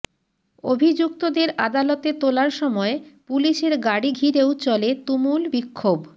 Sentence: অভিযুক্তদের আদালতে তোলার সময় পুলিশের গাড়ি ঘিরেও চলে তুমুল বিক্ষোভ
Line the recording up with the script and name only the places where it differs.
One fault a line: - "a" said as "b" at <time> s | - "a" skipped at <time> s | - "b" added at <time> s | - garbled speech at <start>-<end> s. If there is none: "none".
none